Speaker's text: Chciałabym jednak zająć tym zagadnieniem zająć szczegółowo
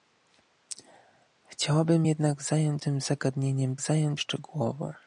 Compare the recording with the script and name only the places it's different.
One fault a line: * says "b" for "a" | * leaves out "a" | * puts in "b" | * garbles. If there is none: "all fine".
all fine